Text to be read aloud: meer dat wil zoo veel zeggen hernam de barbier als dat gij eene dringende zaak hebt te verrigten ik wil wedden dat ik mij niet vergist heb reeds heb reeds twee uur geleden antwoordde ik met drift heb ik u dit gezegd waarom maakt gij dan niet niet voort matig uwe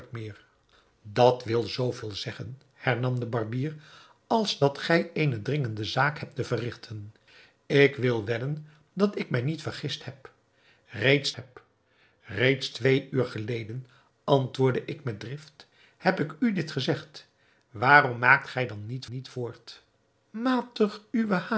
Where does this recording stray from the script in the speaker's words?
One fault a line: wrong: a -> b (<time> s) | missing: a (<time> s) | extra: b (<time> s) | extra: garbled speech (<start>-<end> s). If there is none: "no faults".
no faults